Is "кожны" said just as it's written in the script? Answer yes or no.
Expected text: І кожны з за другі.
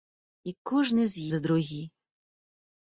yes